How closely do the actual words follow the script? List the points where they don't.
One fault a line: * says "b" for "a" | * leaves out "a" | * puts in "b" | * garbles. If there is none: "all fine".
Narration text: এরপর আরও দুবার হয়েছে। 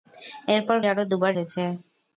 all fine